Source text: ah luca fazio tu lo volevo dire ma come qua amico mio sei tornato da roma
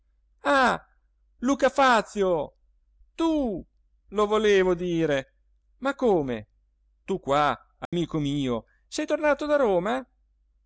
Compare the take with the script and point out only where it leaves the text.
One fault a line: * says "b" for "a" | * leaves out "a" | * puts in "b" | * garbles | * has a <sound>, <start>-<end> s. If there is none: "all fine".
* puts in "tu"
* has a dropout, 7.9-7.9 s